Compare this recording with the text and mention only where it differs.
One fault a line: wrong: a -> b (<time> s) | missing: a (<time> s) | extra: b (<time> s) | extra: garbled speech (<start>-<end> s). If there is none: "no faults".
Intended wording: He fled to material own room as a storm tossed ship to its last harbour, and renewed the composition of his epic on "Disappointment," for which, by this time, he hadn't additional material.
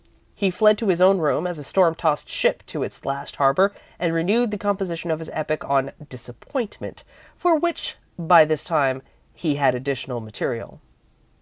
wrong: material -> his (0.9 s)
wrong: hadn't -> had (9.6 s)